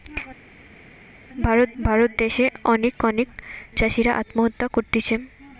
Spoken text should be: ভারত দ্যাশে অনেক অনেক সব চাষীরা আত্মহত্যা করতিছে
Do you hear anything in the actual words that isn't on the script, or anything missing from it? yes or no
yes